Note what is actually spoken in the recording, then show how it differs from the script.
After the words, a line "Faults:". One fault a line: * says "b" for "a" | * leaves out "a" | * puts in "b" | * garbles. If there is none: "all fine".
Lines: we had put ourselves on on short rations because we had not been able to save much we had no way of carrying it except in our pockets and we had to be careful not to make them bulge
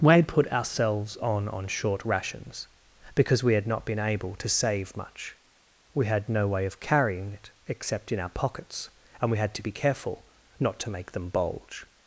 we had put ourselves on on short rations because we had not been able to save much we had no way of carrying it except in our pockets and we had to be careful not to make them bulge
Faults:
all fine